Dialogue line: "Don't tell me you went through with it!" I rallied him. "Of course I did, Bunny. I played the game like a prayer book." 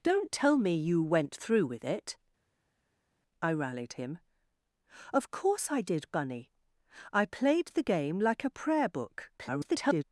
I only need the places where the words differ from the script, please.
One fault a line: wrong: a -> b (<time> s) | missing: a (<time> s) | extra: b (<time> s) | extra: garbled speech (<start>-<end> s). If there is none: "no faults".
extra: garbled speech (9.4-10.0 s)